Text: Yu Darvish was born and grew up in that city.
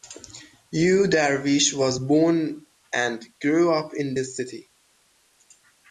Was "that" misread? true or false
true